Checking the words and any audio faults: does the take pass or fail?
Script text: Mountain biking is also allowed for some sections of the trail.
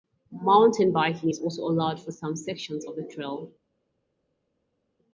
pass